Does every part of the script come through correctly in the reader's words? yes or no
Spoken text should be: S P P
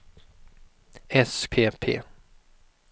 yes